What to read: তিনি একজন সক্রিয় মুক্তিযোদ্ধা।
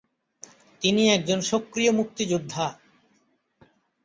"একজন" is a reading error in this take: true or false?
false